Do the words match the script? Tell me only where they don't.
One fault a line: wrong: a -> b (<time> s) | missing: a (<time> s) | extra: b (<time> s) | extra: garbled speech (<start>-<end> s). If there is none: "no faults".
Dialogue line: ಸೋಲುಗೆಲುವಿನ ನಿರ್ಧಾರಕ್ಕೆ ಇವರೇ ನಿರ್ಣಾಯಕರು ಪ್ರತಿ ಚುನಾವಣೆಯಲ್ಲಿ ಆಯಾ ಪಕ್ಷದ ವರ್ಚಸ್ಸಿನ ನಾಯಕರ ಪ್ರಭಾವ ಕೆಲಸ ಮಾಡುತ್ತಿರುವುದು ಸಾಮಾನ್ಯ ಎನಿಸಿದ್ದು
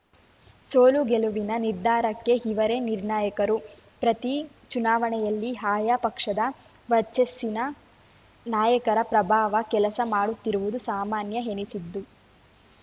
no faults